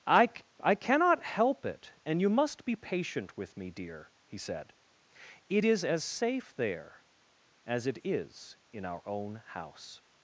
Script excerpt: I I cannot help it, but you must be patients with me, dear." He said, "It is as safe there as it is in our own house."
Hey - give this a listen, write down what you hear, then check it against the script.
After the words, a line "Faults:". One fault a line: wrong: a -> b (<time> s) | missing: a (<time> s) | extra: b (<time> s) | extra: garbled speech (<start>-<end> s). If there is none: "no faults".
I I cannot help it, and you must be patient with me, dear." He said, "It is as safe there as it is in our own house."
Faults:
wrong: but -> and (2.0 s)
wrong: patients -> patient (2.8 s)